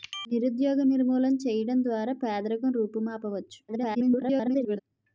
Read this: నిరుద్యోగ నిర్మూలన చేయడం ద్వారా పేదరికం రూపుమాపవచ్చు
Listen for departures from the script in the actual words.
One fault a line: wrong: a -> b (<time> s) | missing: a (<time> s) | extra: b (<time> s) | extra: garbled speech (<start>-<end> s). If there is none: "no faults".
extra: garbled speech (3.7-4.8 s)